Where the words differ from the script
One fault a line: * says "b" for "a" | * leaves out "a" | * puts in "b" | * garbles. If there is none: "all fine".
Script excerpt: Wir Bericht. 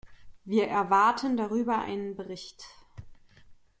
* puts in "erwarten darüber einen"